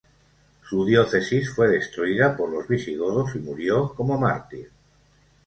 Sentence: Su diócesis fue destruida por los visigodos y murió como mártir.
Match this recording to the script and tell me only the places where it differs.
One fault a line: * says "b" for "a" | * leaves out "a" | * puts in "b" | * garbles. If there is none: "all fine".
all fine